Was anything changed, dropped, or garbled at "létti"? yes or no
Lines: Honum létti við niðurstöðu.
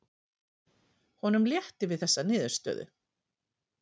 no